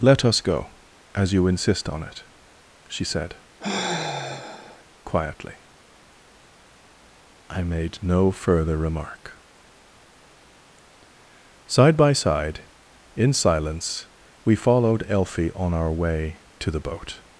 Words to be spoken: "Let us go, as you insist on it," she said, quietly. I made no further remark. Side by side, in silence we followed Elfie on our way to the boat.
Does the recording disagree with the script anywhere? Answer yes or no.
no